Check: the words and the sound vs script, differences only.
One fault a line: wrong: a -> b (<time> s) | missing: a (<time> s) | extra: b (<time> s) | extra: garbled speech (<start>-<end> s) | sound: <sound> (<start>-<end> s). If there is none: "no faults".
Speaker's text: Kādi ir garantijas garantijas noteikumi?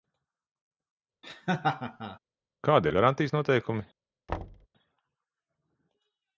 sound: laugh (1.2-2.2 s)
missing: garantijas (3.3 s)
sound: thud (4.3-4.7 s)